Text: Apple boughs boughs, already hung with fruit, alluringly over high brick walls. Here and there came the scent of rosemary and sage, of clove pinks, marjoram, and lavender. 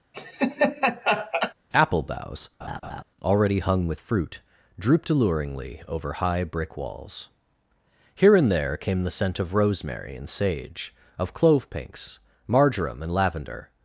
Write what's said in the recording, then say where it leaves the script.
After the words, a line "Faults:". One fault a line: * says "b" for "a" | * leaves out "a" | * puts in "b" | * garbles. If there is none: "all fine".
Apple boughs, already hung with fruit, drooped alluringly over high brick walls. Here and there came the scent of rosemary and sage, of clove pinks, marjoram, and lavender.
Faults:
* leaves out "boughs"
* puts in "drooped"